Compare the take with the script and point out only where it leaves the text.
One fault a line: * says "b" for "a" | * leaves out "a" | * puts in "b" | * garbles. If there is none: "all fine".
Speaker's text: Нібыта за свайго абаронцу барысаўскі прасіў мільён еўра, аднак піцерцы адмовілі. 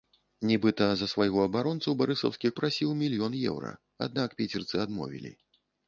all fine